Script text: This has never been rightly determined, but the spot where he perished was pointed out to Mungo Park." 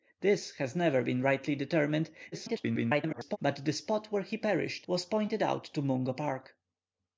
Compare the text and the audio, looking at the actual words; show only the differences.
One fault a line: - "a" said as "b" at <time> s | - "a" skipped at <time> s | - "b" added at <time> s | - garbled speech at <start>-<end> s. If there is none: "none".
- garbled speech at 2.3-3.4 s